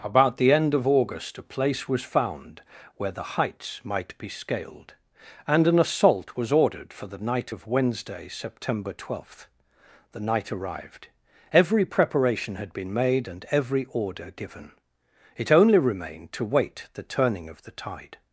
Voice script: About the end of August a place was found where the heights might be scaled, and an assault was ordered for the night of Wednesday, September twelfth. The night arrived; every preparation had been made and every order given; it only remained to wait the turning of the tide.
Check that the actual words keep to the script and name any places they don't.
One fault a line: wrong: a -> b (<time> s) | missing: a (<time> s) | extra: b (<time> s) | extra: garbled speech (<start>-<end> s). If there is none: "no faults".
no faults